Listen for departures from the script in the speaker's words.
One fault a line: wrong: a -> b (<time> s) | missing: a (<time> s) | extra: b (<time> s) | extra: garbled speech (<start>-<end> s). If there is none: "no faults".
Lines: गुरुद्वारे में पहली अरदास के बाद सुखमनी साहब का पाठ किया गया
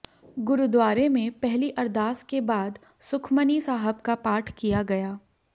no faults